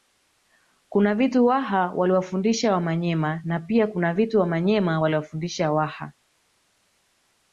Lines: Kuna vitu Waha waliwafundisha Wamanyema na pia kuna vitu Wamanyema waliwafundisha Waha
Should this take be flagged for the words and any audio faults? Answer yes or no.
no